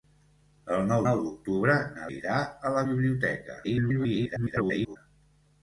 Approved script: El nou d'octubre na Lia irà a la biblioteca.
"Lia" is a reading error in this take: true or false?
true